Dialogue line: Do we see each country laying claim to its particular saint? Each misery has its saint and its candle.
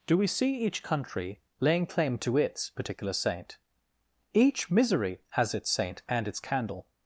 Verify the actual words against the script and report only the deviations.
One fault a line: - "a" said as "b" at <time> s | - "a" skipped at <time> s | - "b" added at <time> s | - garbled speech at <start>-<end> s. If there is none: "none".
none